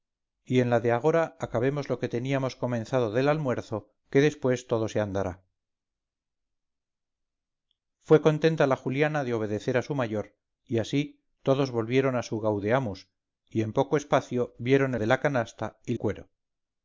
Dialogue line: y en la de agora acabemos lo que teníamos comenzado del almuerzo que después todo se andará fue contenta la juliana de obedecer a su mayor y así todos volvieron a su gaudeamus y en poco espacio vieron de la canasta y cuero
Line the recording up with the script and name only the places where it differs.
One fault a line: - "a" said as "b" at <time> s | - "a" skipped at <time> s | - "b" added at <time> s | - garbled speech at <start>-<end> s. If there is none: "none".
none